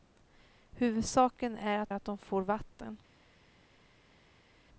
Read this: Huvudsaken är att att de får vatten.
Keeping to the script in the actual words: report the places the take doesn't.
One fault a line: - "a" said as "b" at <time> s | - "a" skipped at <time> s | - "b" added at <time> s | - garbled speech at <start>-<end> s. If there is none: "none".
none